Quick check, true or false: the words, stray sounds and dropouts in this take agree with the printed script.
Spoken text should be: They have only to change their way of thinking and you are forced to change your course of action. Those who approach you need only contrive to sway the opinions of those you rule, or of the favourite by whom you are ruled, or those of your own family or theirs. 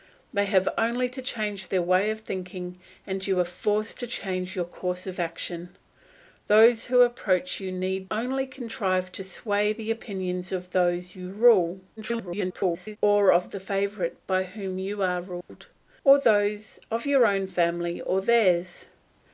false